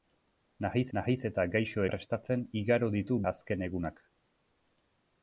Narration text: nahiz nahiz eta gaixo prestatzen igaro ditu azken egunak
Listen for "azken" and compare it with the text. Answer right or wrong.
right